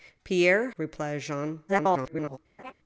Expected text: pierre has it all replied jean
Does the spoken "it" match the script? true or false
false